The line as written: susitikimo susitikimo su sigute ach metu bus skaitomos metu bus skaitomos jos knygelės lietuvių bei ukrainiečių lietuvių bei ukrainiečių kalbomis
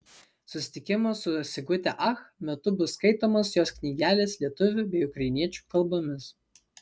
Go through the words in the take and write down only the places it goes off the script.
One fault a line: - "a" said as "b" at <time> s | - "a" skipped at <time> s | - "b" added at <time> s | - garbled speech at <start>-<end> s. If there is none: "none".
- "susitikimo" skipped at 1.1 s
- "metu bus skaitomos" skipped at 3.5 s
- "lietuvių bei ukrainiečių" skipped at 5.7 s